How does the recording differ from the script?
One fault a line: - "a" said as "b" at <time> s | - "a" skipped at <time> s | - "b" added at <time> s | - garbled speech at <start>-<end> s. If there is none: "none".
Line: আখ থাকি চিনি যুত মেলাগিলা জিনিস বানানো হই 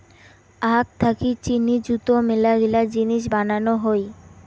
none